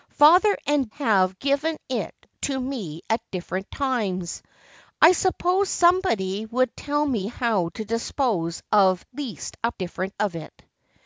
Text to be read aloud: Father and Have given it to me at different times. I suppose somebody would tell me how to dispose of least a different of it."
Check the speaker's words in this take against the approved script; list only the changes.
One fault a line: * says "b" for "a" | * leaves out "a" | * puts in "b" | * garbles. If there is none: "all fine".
all fine